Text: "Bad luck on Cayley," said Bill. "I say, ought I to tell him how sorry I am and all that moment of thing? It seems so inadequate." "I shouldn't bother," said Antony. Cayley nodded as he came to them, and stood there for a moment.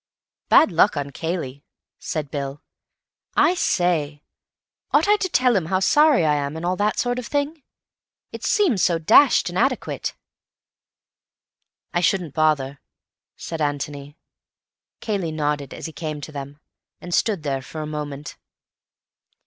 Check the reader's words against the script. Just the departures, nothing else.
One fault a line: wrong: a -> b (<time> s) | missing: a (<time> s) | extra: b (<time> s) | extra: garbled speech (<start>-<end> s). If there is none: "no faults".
wrong: moment -> sort (7.0 s)
extra: dashed (9.0 s)